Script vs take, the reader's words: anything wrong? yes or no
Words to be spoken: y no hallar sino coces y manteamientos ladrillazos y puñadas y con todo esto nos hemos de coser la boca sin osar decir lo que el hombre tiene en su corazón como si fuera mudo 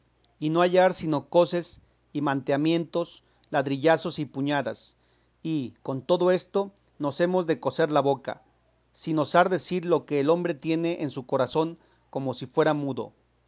no